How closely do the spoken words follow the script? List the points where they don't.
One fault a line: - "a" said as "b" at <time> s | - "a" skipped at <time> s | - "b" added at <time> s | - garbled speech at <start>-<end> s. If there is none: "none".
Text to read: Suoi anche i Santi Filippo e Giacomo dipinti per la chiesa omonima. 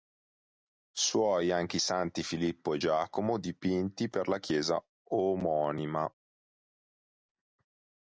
none